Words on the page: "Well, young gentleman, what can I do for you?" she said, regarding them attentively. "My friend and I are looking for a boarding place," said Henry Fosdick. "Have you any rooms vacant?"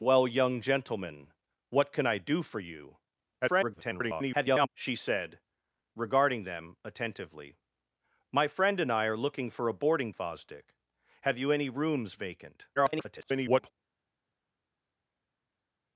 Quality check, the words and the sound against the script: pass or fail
fail